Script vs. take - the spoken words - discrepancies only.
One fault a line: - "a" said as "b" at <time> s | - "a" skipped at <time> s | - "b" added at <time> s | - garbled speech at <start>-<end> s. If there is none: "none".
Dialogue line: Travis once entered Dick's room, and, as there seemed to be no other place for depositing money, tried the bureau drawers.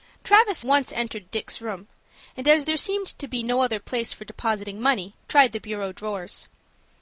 none